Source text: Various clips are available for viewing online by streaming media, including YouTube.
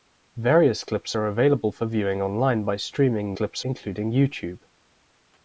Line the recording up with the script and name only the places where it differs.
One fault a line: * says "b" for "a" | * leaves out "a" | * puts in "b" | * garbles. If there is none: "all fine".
* says "clips" for "media"